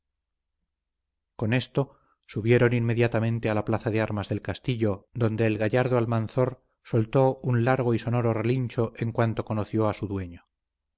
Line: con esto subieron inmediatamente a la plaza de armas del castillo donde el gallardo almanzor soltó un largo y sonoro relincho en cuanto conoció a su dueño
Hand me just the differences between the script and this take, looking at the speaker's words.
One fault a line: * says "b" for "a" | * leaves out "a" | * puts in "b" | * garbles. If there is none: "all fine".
all fine